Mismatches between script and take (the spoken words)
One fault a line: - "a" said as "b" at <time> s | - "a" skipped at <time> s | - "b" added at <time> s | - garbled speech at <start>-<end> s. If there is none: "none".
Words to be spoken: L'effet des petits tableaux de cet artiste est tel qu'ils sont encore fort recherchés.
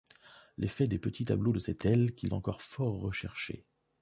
- "artiste est" skipped at 1.8 s
- "sont" skipped at 2.3 s